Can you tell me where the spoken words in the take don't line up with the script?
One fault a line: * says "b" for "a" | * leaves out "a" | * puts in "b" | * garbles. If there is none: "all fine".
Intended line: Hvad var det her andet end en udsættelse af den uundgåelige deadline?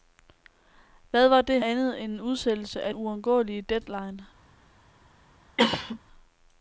* leaves out "her"
* leaves out "den"